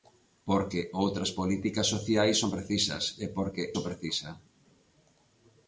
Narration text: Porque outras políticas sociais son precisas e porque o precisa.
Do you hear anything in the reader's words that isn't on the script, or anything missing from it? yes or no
no